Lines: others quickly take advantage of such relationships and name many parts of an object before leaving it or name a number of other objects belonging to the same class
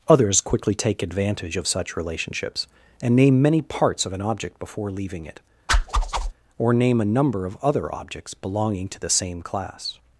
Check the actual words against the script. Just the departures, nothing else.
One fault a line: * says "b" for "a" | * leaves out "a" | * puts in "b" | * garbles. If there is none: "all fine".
all fine